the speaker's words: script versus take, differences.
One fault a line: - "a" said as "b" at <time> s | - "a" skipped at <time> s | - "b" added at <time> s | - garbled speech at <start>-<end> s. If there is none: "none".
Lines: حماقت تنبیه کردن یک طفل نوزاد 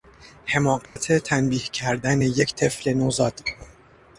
none